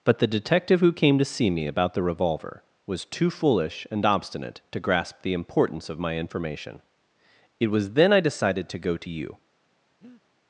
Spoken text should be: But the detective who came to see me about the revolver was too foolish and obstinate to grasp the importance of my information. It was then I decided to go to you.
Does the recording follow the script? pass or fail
pass